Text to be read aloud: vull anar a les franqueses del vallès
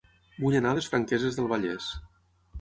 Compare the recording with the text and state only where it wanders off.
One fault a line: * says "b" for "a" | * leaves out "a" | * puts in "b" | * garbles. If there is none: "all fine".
all fine